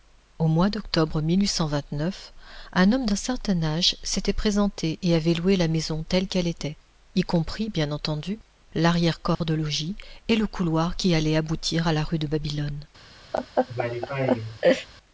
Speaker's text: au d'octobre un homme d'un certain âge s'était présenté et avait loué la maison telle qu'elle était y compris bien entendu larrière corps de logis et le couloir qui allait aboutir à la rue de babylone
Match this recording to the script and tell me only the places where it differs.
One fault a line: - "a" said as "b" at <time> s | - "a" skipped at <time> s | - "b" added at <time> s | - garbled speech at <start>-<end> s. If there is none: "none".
- "mois" added at 0.5 s